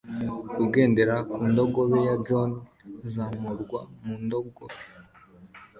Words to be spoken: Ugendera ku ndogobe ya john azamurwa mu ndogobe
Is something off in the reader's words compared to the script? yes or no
no